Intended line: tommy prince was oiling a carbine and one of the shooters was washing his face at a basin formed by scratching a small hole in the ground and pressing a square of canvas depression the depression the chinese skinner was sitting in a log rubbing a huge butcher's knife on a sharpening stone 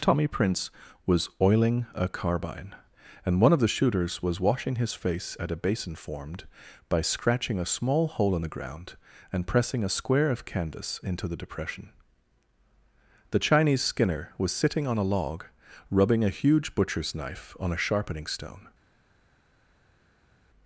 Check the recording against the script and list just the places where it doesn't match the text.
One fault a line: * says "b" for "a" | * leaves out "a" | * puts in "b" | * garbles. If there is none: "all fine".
* says "into" for "depression"
* says "on" for "in"